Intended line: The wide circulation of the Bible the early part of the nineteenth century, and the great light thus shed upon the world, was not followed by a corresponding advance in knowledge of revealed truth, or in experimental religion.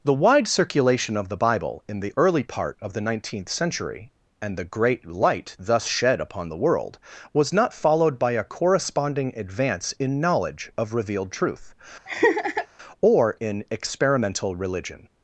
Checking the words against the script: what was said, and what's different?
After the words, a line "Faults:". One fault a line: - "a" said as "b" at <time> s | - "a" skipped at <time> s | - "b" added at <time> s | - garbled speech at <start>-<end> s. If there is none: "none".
The wide circulation of the Bible in the early part of the nineteenth century, and the great light thus shed upon the world, was not followed by a corresponding advance in knowledge of revealed truth, or in experimental religion.
Faults:
- "in" added at 1.9 s